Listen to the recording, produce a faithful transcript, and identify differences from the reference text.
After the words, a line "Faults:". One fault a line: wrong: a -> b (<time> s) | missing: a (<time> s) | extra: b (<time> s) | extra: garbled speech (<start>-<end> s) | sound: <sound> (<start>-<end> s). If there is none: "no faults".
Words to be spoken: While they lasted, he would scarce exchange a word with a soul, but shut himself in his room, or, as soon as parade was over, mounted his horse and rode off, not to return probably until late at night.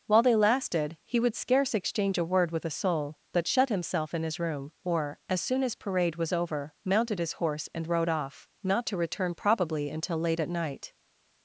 While they lasted, he would scarce exchange a word with a soul, but shut himself in his room, or, as soon as parade was over, mounted his horse and rode off, not to return probably until late at night.
Faults:
no faults